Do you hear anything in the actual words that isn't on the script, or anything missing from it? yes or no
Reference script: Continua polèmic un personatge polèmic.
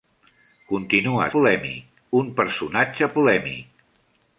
no